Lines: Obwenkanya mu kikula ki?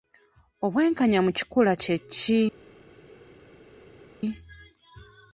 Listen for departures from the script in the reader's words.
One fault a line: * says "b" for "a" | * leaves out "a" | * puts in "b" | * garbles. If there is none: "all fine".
* puts in "kye"